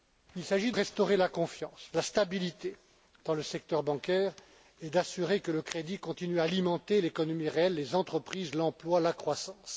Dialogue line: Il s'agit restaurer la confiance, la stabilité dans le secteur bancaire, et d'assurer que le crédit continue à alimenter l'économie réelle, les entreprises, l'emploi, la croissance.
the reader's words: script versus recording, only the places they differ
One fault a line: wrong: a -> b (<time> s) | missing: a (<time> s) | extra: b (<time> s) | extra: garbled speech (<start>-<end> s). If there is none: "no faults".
no faults